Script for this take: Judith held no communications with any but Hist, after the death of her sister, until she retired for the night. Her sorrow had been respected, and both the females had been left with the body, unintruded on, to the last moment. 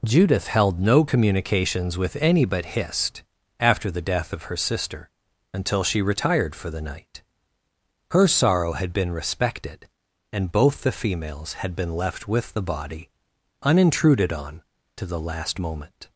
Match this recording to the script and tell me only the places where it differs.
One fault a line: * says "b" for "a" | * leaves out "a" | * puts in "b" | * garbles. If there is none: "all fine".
all fine